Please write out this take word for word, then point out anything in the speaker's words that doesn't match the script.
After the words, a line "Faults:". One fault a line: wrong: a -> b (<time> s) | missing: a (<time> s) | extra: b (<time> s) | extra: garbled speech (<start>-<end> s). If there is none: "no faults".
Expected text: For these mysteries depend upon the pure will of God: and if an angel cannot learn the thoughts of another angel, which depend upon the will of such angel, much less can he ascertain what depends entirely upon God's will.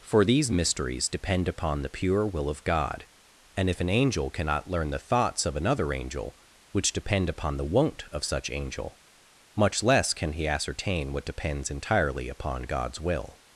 For these mysteries depend upon the pure will of God: and if an angel cannot learn the thoughts of another angel, which depend upon the won't of such angel, much less can he ascertain what depends entirely upon God's will.
Faults:
wrong: will -> won't (7.7 s)